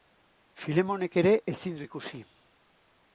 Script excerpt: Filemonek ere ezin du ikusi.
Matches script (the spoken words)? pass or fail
pass